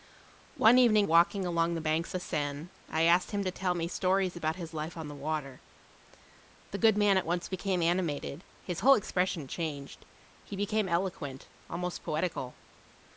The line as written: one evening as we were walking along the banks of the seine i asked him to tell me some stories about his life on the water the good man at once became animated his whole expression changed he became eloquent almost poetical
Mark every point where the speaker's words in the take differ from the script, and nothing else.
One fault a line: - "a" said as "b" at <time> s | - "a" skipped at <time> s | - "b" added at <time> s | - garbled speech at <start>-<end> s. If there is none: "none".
- "as we were" skipped at 1.1 s
- "of" skipped at 2.1 s
- "some" skipped at 3.9 s